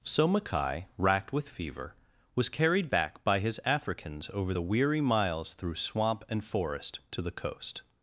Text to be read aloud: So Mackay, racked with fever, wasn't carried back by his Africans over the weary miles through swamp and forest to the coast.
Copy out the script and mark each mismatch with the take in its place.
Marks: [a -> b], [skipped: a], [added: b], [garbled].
So Mackay, racked with fever, [wasn't -> was] carried back by his Africans over the weary miles through swamp and forest to the coast.